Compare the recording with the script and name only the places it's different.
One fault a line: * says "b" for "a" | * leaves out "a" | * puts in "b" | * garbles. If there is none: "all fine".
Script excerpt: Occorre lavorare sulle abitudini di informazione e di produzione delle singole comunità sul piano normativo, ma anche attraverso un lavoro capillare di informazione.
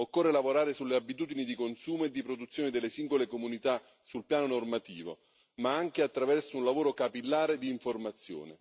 * says "consumo" for "informazione"